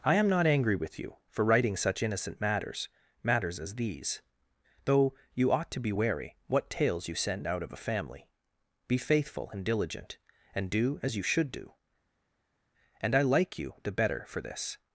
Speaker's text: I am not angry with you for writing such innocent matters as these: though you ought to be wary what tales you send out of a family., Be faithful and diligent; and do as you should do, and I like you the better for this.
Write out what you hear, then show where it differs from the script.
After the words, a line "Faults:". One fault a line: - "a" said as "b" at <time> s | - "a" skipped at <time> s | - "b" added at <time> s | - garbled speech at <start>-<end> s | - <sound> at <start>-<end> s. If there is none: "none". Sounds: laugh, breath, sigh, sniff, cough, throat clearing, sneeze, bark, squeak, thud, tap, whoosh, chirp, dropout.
I am not angry with you for writing such innocent matters matters as these: though you ought to be wary what tales you send out of a family., Be faithful and diligent; and do as you should do, and I like you the better for this.
Faults:
- "matters" added at 3.2 s